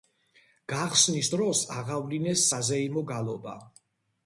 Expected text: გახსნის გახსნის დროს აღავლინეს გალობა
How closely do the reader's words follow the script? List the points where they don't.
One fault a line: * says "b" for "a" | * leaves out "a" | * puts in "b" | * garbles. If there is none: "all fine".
* leaves out "გახსნის"
* puts in "საზეიმო"